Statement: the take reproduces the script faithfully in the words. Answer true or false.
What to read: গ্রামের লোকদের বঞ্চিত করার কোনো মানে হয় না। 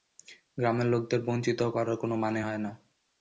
true